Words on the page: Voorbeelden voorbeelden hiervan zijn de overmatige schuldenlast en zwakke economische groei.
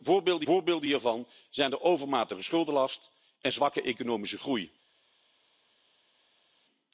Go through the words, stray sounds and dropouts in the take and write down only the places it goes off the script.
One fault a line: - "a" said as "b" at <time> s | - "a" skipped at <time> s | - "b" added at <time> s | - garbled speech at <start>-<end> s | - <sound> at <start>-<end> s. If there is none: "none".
none